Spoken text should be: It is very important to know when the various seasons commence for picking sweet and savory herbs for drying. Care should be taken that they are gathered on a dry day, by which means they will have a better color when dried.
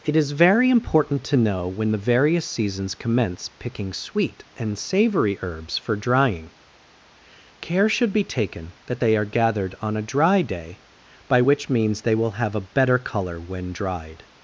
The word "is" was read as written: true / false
true